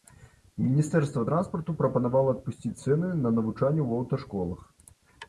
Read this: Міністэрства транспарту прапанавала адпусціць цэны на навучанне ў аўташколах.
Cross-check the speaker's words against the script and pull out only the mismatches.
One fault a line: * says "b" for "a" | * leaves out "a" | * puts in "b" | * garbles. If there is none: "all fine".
all fine